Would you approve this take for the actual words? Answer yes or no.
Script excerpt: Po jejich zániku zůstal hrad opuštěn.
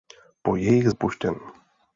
no